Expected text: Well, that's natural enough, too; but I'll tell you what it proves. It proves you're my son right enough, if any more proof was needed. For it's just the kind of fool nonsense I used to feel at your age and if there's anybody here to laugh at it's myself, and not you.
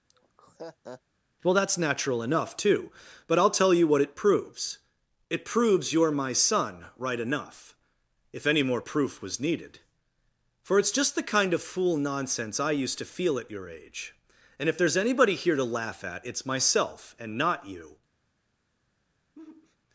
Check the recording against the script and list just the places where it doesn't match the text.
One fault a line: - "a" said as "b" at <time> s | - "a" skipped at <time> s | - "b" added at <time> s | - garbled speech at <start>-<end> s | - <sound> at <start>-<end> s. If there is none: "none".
- laugh at 0.1-1.0 s
- sigh at 19.4-19.8 s